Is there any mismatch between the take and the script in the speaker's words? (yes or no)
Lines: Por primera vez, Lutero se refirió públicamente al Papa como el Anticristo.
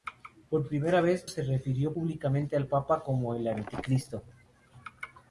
yes